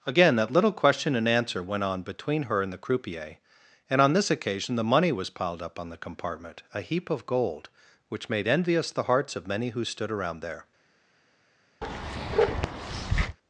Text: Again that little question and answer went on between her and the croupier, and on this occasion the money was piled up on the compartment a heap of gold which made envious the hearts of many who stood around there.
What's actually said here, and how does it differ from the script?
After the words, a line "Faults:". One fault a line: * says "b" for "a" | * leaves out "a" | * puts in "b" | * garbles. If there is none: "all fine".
Again that little question and answer went on between her and the croupier, and on this occasion the money was piled up on the compartment a heap of gold which made envious the hearts of many who stood around there.
Faults:
all fine